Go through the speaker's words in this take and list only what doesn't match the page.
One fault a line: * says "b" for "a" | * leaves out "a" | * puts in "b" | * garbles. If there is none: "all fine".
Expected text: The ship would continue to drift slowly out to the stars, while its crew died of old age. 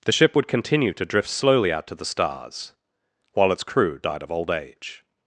all fine